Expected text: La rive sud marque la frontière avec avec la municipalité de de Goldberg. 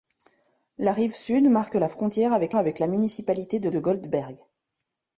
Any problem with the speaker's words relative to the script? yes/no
no